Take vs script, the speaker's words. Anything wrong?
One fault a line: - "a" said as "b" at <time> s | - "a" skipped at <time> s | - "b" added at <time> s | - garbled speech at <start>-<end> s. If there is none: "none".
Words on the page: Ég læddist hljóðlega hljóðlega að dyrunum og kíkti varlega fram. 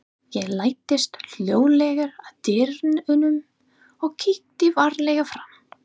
- "hljóðlega" skipped at 2.1 s